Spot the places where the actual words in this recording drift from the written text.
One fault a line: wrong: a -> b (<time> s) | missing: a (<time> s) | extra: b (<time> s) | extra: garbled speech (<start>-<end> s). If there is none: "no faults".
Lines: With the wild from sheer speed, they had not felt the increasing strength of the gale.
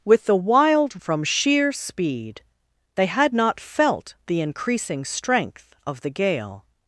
no faults